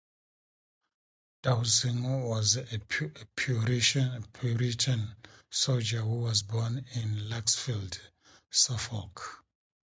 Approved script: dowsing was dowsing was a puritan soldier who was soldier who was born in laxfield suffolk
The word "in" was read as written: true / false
true